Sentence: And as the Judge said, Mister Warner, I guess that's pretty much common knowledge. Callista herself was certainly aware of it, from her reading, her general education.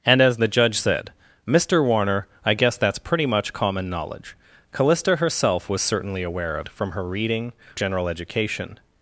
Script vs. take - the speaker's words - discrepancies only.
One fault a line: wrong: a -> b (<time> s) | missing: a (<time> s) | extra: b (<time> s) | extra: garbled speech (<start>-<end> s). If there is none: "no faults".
missing: it (6.7 s)
missing: her (7.5 s)